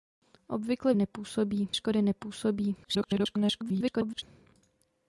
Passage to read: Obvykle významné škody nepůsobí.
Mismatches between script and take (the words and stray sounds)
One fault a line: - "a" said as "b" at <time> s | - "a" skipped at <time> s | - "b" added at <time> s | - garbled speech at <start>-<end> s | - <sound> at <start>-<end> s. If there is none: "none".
- "významné" said as "nepůsobí" at 1.0 s
- garbled speech at 2.8-4.2 s